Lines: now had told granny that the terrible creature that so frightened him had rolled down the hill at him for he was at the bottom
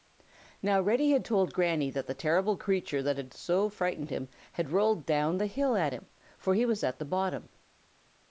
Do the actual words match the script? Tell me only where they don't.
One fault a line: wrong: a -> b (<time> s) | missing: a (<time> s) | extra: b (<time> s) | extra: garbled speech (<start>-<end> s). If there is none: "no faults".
extra: reddy (0.8 s)
extra: had (3.2 s)